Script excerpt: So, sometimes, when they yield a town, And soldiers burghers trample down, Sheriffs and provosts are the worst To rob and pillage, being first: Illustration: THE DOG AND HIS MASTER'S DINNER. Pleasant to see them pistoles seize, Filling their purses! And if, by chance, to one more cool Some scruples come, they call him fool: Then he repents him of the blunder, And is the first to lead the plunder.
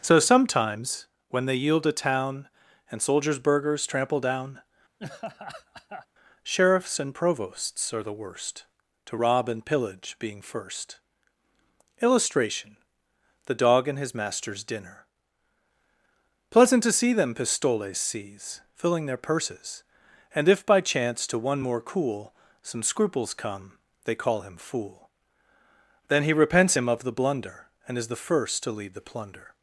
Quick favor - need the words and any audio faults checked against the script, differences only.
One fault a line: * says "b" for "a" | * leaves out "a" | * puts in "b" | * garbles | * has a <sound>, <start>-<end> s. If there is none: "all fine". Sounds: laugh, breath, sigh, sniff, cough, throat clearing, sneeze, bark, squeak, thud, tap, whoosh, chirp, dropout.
* has a laugh, 5.0-6.1 s